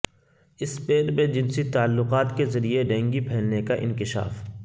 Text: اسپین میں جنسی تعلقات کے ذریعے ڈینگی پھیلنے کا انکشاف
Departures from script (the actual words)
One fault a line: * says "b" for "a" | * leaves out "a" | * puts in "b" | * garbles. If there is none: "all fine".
all fine